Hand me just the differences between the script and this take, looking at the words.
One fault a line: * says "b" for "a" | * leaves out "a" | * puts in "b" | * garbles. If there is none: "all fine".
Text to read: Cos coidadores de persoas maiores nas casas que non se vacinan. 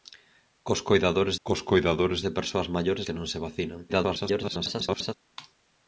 * puts in "cos coidadores"
* leaves out "nas casas"
* garbles